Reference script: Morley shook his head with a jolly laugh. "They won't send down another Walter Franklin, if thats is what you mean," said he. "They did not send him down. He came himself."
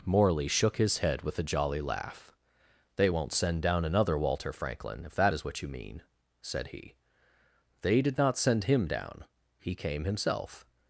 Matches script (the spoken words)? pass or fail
fail